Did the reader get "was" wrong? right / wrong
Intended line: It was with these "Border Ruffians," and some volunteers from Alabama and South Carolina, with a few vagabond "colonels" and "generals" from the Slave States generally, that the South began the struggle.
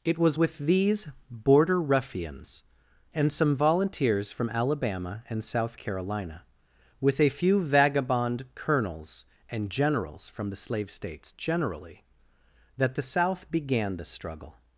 right